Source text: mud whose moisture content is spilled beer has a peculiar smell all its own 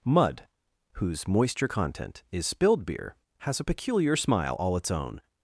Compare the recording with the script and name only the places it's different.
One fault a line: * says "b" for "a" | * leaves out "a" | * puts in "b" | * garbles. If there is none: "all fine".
* says "smile" for "smell"